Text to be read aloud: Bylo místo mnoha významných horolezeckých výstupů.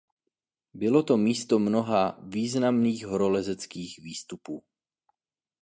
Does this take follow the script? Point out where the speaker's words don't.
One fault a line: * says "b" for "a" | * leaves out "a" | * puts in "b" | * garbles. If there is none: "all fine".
* puts in "to"